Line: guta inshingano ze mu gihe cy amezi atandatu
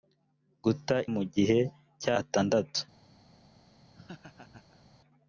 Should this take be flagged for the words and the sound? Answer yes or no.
yes